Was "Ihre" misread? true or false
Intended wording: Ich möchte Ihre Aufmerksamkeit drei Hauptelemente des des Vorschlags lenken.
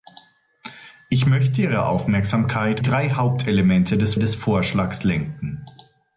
false